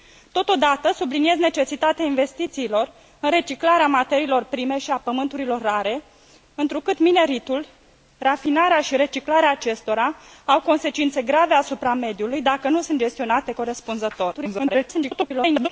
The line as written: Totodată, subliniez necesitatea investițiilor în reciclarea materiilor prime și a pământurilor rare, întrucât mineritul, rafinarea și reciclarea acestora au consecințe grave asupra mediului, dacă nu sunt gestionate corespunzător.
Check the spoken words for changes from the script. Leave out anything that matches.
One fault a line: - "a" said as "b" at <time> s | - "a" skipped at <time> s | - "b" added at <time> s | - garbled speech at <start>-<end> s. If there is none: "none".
- garbled speech at 14.3-15.7 s